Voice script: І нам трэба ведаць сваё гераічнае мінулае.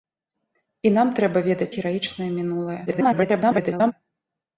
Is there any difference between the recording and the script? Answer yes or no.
yes